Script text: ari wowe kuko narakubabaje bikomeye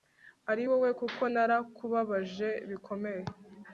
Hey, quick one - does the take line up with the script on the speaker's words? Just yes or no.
yes